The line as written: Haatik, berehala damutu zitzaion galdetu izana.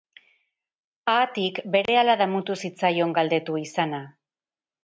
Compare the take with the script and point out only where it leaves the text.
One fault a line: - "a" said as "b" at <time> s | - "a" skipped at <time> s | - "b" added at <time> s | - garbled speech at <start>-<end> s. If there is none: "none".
none